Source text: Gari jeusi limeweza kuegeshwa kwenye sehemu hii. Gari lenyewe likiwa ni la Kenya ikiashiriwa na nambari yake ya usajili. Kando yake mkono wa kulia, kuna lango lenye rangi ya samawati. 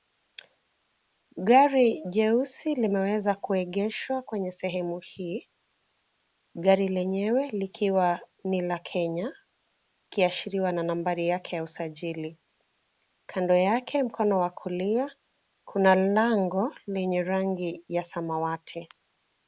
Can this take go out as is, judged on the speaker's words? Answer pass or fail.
pass